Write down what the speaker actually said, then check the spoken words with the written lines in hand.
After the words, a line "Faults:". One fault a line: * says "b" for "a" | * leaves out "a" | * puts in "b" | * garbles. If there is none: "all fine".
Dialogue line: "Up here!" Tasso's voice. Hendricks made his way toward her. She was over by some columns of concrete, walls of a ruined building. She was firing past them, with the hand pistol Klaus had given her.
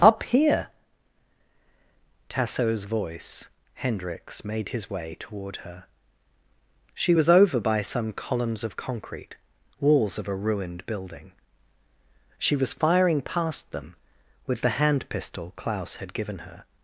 "Up here!" Tasso's voice. Hendricks made his way toward her. She was over by some columns of concrete, walls of a ruined building. She was firing past them, with the hand pistol Klaus had given her.
Faults:
all fine